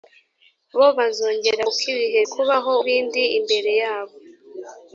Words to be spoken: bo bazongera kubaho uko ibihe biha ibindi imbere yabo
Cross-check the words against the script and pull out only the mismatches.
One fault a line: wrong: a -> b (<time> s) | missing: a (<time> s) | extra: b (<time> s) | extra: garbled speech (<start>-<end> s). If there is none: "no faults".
missing: kubaho (1.6 s)
wrong: biha -> kubaho (2.3 s)